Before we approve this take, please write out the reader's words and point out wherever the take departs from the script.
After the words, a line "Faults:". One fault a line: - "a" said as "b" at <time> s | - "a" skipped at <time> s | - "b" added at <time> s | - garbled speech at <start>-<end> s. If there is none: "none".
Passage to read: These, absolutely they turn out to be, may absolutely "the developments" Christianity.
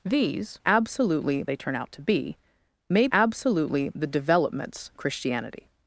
These, absolutely they turn out to be, may absolutely "the developments" Christianity.
Faults:
none